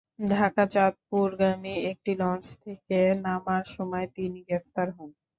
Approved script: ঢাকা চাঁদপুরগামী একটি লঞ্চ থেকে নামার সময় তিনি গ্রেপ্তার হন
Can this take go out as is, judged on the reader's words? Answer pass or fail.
pass